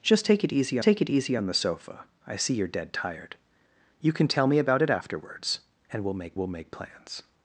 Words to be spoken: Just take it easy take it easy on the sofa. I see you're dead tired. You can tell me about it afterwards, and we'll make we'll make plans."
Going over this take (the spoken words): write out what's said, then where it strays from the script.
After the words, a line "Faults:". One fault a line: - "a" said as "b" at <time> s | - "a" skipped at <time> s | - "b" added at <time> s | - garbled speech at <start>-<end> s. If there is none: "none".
Just take it easy take it easy on the sofa. I see you're dead tired. You can tell me about it afterwards, and we'll make we'll make plans."
Faults:
none